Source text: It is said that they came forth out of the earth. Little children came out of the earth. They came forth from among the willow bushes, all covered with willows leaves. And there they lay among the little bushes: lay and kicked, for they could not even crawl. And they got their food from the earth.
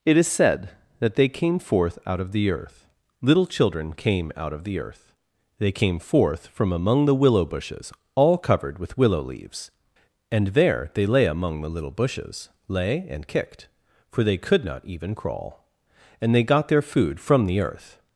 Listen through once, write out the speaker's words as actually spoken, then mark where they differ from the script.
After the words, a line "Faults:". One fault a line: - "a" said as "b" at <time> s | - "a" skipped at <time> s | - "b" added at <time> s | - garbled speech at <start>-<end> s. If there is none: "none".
It is said that they came forth out of the earth. Little children came out of the earth. They came forth from among the willow bushes, all covered with willow leaves. And there they lay among the little bushes: lay and kicked, for they could not even crawl. And they got their food from the earth.
Faults:
- "willows" said as "willow" at 9.0 s